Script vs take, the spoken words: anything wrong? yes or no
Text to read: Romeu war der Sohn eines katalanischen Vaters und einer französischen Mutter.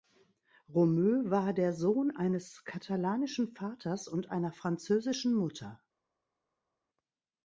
no